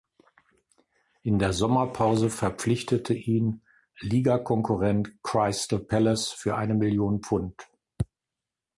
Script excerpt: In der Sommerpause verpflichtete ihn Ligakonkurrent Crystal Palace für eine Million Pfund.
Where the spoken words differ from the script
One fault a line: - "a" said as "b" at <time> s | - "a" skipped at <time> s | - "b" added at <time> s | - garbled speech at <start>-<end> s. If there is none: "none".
none